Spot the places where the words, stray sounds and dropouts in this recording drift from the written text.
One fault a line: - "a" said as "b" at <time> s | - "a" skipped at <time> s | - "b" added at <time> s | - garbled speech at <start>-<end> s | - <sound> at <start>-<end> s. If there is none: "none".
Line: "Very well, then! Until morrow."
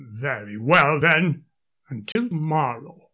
- dropout at 2.1-2.2 s